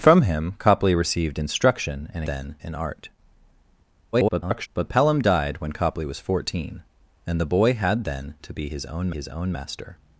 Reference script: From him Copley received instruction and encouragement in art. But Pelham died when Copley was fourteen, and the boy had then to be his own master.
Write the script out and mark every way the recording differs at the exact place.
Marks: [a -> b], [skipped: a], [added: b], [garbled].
From him Copley received instruction and [encouragement -> then] in art. [garbled] But Pelham died when Copley was fourteen, and the boy had then to be his own [added: his own] master.